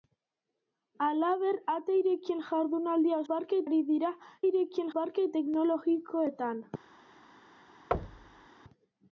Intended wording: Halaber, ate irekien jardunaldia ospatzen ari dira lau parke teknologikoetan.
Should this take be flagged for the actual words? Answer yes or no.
yes